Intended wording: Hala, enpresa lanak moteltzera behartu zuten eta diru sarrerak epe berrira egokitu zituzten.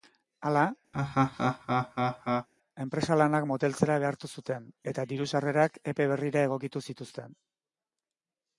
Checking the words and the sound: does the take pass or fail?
fail